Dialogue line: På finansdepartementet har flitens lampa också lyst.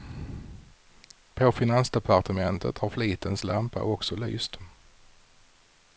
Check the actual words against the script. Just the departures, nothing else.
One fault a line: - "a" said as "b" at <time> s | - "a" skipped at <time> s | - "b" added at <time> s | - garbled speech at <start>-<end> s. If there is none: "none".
none